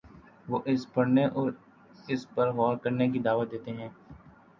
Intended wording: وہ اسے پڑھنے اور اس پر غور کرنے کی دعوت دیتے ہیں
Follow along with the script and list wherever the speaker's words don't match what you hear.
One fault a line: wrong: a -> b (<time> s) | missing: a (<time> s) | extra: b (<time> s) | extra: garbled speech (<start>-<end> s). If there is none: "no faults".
no faults